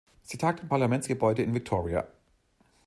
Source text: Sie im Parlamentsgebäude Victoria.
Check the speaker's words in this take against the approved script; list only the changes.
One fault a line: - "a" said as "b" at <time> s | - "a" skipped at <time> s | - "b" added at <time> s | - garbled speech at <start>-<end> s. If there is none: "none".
- "tagt" added at 0.4 s
- "in" added at 1.4 s